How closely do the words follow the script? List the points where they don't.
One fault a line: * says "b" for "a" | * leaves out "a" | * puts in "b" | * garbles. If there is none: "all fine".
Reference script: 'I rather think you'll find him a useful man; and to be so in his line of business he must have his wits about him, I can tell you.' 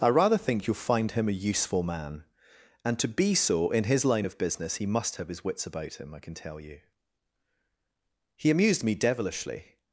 * puts in "He amused me devilishly"